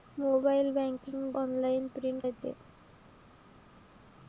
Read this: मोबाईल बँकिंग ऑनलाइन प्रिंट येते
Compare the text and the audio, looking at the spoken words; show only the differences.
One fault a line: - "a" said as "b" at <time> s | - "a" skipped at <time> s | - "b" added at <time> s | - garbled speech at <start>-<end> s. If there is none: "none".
none